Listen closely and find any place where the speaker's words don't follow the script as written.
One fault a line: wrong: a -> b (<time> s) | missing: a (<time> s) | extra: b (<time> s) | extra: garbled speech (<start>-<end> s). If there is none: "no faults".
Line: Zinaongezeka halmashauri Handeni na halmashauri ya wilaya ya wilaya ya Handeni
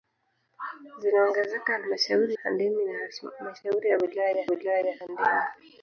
no faults